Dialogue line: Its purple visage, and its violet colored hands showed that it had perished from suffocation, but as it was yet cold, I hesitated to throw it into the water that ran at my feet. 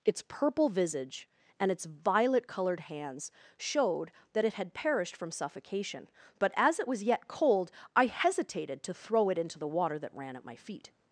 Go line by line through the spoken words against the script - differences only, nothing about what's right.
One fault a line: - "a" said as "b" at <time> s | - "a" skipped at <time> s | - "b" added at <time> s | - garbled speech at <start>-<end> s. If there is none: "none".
none